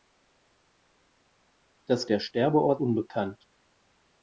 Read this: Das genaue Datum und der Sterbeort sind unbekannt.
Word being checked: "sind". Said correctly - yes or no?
no